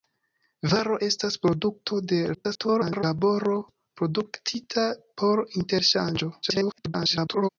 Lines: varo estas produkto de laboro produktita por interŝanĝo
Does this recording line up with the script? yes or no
no